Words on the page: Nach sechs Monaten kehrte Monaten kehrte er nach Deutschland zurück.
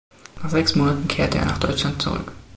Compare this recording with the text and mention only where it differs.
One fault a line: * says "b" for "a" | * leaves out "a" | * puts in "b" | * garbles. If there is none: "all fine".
* leaves out "Monaten kehrte"